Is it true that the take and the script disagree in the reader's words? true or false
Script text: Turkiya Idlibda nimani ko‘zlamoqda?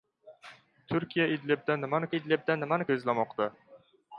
true